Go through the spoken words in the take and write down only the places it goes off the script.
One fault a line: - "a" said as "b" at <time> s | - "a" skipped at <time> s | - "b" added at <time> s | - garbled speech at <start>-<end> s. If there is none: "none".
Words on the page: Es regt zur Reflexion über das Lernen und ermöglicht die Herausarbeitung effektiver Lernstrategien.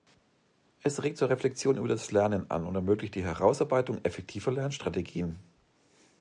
- "an" added at 2.5 s